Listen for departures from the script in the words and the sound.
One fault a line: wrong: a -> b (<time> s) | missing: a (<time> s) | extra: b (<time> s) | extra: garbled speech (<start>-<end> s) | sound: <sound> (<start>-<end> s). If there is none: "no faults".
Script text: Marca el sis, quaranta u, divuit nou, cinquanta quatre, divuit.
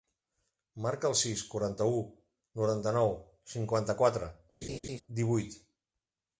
wrong: divuit -> noranta (2.6 s)
sound: laugh (4.6-5.0 s)